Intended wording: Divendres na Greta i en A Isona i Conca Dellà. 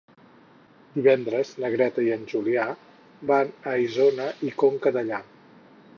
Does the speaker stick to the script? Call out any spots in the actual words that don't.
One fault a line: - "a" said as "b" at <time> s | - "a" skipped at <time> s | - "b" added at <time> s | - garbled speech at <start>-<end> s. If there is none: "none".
- "Julià van" added at 2.3 s